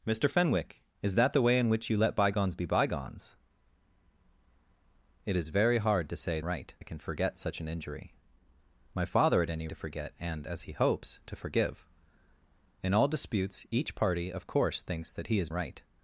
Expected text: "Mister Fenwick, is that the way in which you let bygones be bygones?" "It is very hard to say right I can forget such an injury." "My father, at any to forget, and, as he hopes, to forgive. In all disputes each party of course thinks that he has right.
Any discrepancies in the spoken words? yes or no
no